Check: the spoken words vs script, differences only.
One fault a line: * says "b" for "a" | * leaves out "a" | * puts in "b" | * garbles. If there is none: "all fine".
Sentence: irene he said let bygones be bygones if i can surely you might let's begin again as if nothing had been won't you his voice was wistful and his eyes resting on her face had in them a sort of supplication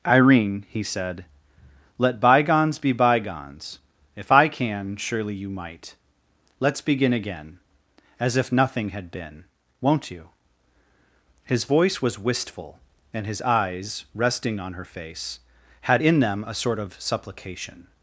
all fine